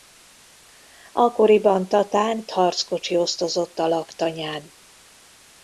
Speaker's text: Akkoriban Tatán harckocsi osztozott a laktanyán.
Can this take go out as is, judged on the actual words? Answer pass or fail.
pass